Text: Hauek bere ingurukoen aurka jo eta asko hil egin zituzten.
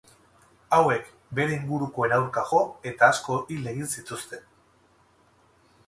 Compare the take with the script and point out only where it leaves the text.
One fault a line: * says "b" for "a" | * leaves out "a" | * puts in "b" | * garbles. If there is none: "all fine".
all fine